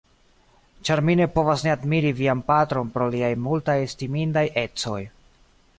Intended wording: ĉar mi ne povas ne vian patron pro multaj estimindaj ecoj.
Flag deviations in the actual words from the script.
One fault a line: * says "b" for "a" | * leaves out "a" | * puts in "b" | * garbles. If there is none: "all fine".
* puts in "admiri"
* puts in "liaj"